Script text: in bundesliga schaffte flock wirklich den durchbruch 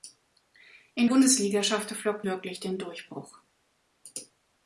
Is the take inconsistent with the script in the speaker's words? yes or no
no